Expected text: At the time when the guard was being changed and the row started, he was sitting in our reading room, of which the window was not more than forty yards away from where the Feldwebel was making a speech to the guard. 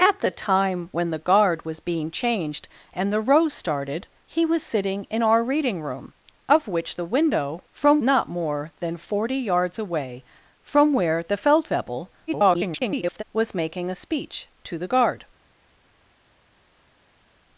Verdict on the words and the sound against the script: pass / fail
fail